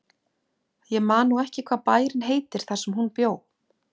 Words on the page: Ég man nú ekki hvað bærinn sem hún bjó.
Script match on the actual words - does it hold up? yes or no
no